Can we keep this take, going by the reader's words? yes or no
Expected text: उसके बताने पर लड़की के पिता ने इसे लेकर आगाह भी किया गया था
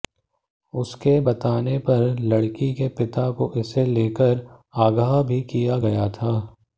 no